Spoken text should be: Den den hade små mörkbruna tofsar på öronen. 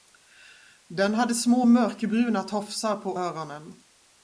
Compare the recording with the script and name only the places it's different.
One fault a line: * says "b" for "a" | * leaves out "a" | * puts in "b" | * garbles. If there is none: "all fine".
* leaves out "den"